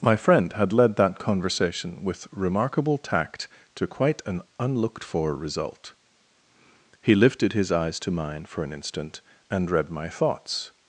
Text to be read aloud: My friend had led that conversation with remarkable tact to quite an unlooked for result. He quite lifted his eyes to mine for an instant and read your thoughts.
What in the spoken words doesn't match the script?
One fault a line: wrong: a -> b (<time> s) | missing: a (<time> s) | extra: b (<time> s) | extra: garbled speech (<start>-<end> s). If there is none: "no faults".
missing: quite (7.1 s)
wrong: your -> my (9.9 s)